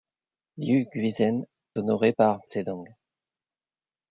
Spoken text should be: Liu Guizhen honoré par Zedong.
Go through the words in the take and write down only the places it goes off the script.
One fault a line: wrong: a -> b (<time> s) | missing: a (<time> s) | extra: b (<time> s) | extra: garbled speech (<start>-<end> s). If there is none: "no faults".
no faults